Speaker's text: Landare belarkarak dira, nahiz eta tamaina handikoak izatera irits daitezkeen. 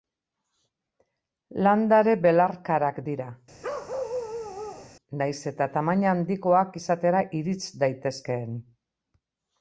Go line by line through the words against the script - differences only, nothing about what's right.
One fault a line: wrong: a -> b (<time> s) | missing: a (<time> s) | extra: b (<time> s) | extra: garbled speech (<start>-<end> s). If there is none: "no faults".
no faults